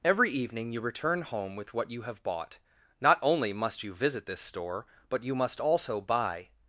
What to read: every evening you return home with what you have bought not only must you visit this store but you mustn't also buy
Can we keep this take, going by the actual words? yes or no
no